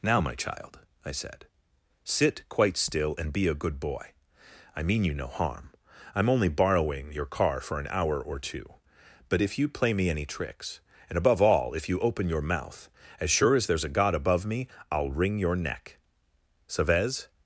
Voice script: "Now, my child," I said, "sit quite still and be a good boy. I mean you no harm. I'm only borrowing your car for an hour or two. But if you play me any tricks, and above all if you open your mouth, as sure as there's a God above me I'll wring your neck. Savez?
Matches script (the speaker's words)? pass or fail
pass